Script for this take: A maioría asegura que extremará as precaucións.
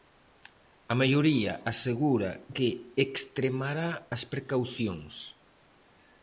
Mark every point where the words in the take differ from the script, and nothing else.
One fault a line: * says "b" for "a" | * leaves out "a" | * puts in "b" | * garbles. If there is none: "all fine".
all fine